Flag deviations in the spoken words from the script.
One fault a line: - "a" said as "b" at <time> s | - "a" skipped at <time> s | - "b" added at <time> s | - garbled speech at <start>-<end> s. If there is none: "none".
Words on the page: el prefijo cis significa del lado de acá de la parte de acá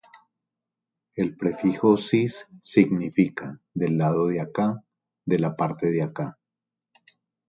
none